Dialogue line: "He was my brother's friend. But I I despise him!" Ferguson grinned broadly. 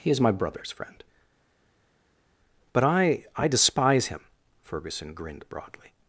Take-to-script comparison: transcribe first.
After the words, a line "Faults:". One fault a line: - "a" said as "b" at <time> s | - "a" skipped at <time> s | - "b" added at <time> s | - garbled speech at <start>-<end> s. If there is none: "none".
"He is my brother's friend. But I I despise him!" Ferguson grinned broadly.
Faults:
- "was" said as "is" at 0.1 s